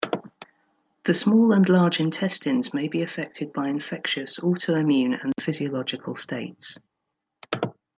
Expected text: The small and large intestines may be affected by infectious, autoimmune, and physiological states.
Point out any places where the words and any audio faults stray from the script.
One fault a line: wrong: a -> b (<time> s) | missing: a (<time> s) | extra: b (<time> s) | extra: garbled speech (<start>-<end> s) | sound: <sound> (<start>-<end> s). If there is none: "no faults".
no faults